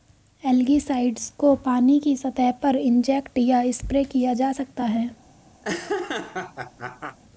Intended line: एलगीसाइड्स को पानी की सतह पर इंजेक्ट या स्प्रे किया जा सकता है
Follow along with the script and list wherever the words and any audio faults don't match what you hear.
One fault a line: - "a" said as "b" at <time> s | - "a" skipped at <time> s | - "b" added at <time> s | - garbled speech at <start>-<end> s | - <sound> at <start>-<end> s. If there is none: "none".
- laugh at 5.6-7.2 s